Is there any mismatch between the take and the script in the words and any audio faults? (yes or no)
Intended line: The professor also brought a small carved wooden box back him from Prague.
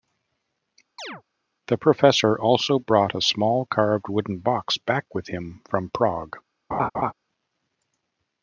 yes